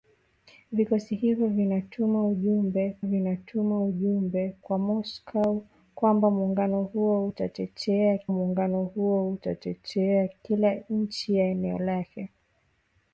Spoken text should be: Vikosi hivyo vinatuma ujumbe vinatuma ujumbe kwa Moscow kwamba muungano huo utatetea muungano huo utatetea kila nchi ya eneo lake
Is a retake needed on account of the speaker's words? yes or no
no